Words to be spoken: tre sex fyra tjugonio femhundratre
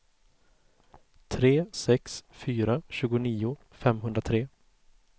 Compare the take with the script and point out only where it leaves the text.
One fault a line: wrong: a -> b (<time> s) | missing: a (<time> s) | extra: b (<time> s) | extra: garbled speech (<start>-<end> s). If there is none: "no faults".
no faults